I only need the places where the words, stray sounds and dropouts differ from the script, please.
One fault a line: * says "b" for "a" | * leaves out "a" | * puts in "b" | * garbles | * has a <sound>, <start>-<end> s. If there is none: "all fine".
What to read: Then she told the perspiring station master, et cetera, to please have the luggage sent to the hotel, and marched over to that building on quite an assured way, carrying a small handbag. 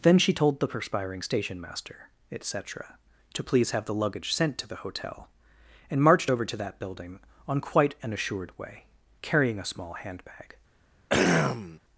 * has a throat clearing, 11.1-11.8 s